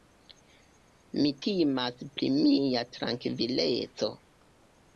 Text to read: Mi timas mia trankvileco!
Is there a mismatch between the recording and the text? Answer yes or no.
yes